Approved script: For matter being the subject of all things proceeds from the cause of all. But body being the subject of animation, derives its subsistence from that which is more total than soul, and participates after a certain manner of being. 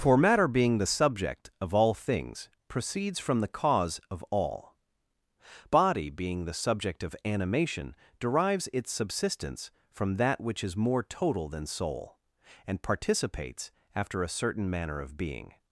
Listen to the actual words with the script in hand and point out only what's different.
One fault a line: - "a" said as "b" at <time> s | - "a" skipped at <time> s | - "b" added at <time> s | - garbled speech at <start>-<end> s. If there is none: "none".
- "But" skipped at 4.8 s